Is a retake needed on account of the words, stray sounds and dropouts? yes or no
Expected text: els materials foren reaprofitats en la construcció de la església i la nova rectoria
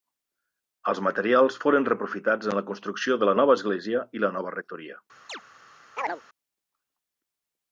yes